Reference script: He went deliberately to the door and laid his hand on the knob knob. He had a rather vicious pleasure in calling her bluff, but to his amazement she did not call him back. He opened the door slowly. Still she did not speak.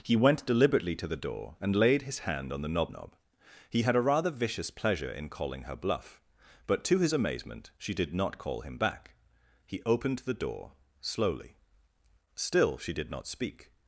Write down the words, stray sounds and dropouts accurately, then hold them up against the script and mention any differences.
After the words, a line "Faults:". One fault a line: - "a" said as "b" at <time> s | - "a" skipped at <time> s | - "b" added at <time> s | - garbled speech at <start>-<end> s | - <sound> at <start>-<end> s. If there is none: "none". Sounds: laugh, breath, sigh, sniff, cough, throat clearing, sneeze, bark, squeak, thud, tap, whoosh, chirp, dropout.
He went deliberately to the door and laid his hand on the knob knob. He had a rather vicious pleasure in calling her bluff, but to his amazement she did not call him back. He opened the door slowly. Still she did not speak.
Faults:
none